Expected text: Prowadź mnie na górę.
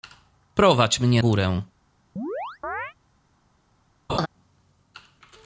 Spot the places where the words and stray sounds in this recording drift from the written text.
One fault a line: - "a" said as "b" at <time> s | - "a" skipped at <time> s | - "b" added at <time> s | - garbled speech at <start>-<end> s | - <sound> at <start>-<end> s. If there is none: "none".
- "na" skipped at 1.2 s
- chirp at 2.2-2.9 s
- laugh at 4.1-4.3 s